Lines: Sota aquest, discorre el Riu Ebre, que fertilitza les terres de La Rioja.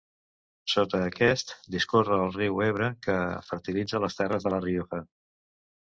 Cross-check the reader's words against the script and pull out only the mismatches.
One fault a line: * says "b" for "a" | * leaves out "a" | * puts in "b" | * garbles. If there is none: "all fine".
all fine